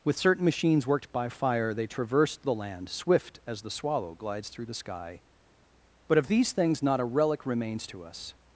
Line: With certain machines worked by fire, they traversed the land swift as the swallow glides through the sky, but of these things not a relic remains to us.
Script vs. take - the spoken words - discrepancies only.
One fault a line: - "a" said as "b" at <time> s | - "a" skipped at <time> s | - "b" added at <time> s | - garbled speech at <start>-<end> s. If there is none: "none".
none